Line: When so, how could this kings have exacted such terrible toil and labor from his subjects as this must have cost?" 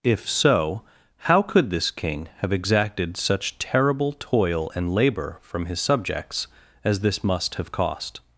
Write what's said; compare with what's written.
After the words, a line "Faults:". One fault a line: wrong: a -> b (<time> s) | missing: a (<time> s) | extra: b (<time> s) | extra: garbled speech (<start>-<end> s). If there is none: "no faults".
If so, how could this king have exacted such terrible toil and labor from his subjects as this must have cost?"
Faults:
wrong: When -> If (0.0 s)
wrong: kings -> king (1.9 s)